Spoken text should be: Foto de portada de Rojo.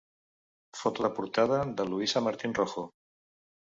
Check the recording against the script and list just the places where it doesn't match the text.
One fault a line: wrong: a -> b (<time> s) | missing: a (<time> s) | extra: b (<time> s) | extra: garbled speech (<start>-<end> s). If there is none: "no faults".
extra: Luisa Martín (1.9 s)